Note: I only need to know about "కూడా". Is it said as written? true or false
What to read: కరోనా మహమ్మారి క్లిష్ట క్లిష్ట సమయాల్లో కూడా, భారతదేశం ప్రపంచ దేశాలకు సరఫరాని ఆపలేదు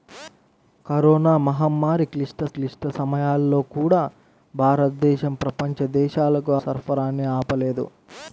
true